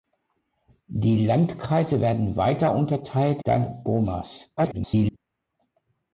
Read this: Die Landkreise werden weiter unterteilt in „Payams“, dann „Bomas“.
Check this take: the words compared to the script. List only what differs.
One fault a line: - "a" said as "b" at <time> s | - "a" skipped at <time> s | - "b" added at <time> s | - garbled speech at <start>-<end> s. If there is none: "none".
- "in Payams" skipped at 3.4 s
- garbled speech at 4.6-5.2 s